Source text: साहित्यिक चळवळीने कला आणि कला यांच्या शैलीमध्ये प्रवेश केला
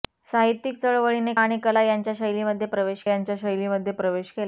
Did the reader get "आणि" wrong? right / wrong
wrong